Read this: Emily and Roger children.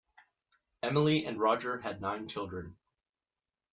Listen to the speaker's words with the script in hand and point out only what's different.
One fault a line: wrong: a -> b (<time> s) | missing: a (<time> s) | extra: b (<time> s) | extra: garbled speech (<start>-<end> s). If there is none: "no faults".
extra: had nine (1.8 s)